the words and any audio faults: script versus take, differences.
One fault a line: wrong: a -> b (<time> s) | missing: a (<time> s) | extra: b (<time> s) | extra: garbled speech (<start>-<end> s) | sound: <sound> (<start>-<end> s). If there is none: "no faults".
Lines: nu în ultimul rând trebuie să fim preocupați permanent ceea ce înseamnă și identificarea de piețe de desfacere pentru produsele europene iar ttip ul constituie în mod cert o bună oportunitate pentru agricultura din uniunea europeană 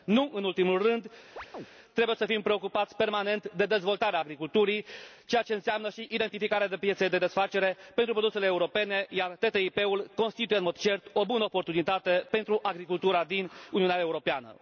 sound: chirp (1.4-1.7 s)
extra: de dezvoltarea agriculturii (3.6 s)